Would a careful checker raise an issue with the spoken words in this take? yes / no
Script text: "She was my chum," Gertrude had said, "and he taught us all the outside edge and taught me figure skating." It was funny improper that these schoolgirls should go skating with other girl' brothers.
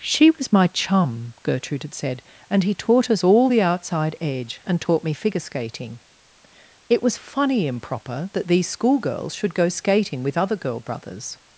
no